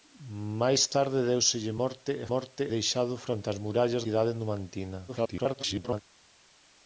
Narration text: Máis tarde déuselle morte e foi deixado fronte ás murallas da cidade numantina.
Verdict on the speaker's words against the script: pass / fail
fail